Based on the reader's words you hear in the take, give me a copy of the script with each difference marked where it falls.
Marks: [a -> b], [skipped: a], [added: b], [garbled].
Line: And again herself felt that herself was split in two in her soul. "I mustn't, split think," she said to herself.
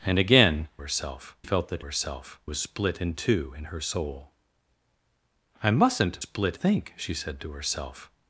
And again herself felt that herself was split in two in her soul. "I mustn't, split think," she said to herself.